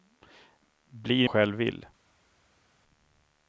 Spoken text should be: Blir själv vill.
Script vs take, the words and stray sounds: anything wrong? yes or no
no